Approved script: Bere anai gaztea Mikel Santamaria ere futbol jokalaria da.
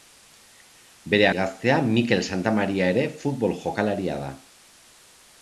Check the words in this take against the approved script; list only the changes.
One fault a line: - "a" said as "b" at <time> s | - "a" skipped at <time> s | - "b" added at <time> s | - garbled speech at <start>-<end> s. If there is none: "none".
- "anai" skipped at 1.3 s